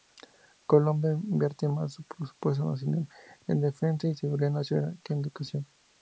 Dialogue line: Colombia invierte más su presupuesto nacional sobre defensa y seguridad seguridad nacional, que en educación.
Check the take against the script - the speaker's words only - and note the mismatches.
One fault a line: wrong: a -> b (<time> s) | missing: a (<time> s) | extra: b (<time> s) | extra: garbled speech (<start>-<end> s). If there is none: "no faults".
wrong: sobre -> en (3.5 s)
missing: seguridad (4.5 s)